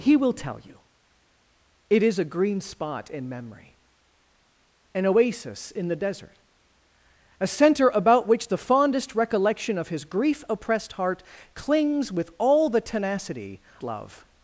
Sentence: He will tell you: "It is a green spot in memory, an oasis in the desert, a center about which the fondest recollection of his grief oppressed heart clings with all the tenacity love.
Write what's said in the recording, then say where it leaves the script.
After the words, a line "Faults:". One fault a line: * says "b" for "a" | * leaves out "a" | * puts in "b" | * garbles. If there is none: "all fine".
He will tell you: "It is a green spot in memory, an oasis in the desert, a center about which the fondest recollection of his grief oppressed heart clings with all the tenacity love.
Faults:
all fine